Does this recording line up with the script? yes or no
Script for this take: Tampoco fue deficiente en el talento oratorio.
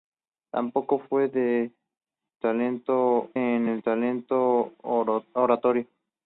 no